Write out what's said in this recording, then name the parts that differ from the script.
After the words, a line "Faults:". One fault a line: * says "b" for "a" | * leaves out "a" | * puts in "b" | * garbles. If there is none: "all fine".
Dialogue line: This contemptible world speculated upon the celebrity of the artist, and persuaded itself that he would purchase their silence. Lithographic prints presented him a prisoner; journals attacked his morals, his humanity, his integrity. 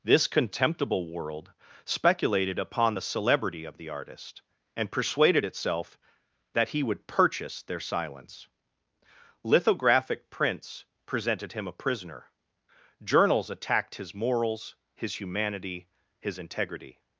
This contemptible world speculated upon the celebrity of the artist, and persuaded itself that he would purchase their silence. Lithographic prints presented him a prisoner; journals attacked his morals, his humanity, his integrity.
Faults:
all fine